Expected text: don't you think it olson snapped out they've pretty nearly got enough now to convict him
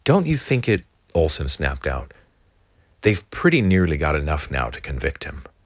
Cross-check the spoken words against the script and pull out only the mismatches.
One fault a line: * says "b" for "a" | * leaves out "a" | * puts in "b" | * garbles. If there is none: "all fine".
all fine